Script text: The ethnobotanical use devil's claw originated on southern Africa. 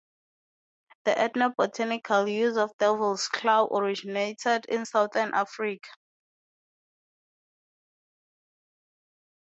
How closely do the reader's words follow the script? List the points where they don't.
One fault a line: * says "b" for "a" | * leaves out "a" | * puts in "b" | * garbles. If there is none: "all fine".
* puts in "of"
* says "in" for "on"